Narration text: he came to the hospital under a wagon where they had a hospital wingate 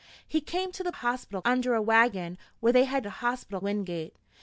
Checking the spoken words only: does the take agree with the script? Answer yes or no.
yes